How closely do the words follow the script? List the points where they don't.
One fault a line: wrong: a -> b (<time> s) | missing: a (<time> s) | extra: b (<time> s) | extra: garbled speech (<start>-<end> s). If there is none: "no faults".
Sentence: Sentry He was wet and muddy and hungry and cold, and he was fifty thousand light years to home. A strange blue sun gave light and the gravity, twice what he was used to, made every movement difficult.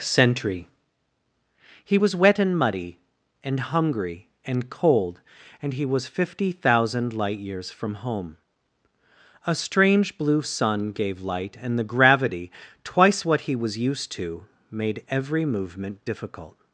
wrong: to -> from (7.7 s)